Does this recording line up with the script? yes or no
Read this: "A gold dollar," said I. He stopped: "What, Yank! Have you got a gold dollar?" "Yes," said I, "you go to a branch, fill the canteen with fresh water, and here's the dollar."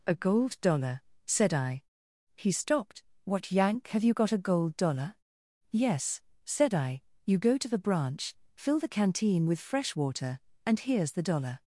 no